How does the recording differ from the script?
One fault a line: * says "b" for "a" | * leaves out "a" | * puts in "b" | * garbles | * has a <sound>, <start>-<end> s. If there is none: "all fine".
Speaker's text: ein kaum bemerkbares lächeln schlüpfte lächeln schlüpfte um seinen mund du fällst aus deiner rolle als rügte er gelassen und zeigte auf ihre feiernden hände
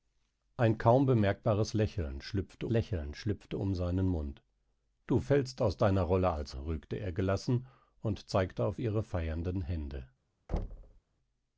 * has a thud, 10.5-11.0 s